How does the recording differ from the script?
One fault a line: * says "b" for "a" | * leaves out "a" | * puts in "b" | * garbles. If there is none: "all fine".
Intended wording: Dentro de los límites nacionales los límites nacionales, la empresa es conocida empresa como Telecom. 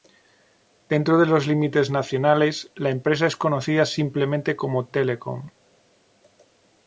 * leaves out "los límites nacionales"
* says "simplemente" for "empresa"